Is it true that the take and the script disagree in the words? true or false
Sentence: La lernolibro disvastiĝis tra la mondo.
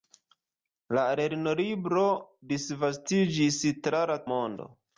false